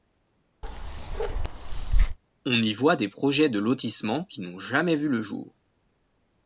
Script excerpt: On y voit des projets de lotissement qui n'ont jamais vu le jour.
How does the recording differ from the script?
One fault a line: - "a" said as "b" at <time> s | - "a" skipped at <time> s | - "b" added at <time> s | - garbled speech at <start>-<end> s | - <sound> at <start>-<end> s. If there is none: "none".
- bark at 0.6-2.2 s